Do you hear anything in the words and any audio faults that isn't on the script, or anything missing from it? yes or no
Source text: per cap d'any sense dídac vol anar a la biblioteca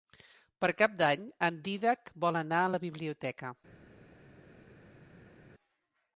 yes